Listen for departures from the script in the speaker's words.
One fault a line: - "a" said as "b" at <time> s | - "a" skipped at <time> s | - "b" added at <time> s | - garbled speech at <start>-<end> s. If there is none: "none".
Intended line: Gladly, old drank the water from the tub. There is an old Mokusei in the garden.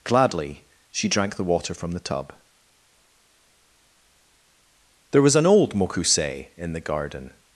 - "old" said as "she" at 0.9 s
- "is" said as "was" at 5.2 s